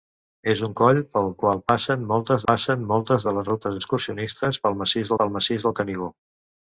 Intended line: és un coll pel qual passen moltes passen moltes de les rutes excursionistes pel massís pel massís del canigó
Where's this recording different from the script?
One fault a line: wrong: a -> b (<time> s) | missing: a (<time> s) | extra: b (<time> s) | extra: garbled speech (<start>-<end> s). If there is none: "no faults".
no faults